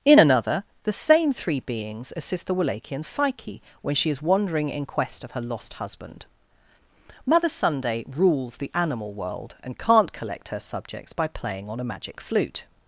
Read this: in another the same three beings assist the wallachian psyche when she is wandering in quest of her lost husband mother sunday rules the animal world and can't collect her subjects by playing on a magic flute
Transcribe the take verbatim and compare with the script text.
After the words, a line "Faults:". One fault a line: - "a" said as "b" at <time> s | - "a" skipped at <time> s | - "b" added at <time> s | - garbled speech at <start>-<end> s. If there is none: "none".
in another the same three beings assist the wallachian psyche when she is wandering in quest of her lost husband mother sunday rules the animal world and can't collect her subjects by playing on a magic flute
Faults:
none